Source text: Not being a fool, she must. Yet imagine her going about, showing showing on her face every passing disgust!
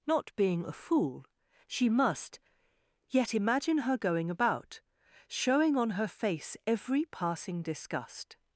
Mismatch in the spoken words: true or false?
true